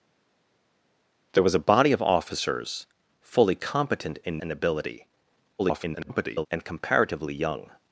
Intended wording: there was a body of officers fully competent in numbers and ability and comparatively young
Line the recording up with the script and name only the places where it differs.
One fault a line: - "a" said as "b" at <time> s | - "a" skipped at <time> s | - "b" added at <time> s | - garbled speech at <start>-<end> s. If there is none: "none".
- "numbers" skipped at 4.4 s
- garbled speech at 5.6-6.5 s